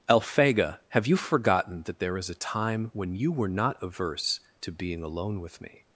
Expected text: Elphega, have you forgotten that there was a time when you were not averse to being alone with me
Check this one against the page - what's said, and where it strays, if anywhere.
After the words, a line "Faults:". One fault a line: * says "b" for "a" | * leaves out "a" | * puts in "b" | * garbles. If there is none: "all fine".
Elphega, have you forgotten that there is a time when you were not averse to being alone with me
Faults:
* says "is" for "was"